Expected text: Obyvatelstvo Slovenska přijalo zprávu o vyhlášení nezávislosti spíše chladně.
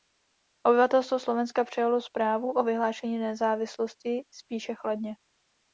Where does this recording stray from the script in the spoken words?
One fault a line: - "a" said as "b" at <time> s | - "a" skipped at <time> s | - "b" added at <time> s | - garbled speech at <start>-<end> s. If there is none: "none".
none